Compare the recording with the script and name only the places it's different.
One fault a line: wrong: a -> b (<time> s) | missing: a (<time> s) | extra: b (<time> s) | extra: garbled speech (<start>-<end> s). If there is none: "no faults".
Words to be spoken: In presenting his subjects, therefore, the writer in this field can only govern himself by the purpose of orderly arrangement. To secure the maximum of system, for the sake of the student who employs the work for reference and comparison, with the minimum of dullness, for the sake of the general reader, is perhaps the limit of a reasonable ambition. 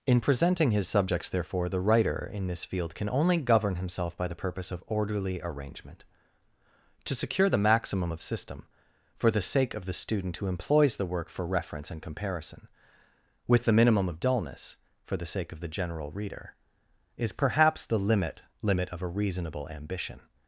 extra: limit (18.6 s)